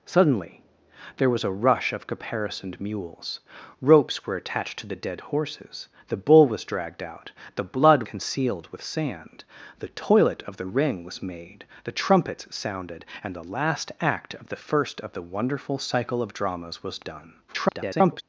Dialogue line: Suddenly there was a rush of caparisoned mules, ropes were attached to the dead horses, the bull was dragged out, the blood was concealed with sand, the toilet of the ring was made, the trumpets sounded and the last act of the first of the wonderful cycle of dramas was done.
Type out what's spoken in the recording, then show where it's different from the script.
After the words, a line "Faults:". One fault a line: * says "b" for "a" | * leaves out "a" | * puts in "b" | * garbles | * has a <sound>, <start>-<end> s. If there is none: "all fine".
Suddenly there was a rush of caparisoned mules, ropes were attached to the dead horses, the bull was dragged out, the blood concealed with sand, the toilet of the ring was made, the trumpets sounded and the last act of the first of the wonderful cycle of dramas was done. [garbled]
Faults:
* leaves out "was"
* garbles